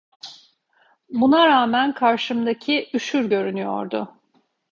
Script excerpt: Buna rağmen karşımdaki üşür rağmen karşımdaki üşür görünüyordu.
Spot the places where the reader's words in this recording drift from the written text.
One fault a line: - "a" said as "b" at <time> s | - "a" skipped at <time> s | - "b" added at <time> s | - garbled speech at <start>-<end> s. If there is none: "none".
- "rağmen karşımdaki üşür" skipped at 3.3 s